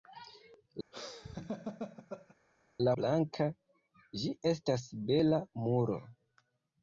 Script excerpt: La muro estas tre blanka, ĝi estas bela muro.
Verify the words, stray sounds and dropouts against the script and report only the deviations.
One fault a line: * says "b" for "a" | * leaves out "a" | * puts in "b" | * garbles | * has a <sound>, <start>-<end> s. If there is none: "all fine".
* has a laugh, 0.9-2.4 s
* leaves out "muro estas tre"